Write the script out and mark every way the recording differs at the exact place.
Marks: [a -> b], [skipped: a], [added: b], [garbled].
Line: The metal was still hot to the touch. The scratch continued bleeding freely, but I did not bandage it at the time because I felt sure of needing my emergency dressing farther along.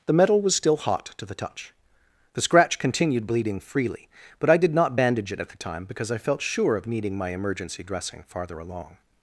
The metal was still hot to the touch. The scratch continued bleeding freely, but I did not bandage it at the time because I felt sure of needing my emergency dressing farther along.